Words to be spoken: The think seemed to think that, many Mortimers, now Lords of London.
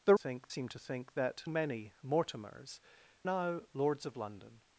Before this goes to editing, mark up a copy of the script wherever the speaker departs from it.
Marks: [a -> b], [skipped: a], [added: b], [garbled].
The think seemed to think that, many Mortimers, now Lords of London.